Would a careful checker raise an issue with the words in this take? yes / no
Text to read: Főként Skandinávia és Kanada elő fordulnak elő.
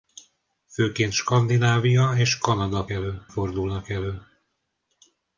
no